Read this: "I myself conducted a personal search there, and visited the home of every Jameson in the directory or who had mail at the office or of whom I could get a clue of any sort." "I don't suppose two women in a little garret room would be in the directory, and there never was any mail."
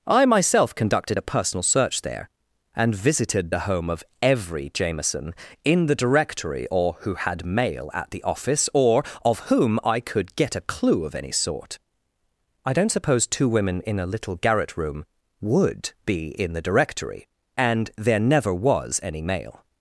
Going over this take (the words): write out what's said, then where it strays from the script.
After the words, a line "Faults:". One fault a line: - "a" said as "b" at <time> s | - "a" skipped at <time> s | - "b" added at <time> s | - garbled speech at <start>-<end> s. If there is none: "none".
"I myself conducted a personal search there, and visited the home of every Jameson in the directory or who had mail at the office or of whom I could get a clue of any sort." "I don't suppose two women in a little garret room would be in the directory, and there never was any mail."
Faults:
none